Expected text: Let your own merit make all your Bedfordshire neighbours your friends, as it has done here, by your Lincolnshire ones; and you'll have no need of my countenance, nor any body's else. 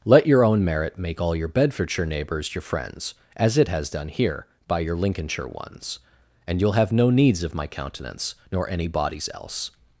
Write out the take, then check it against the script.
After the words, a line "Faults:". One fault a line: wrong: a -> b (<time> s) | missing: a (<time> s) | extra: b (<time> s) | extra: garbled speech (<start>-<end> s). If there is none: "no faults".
Let your own merit make all your Bedfordshire neighbours your friends, as it has done here, by your Lincolnshire ones; and you'll have no needs of my countenance, nor any body's else.
Faults:
wrong: need -> needs (7.1 s)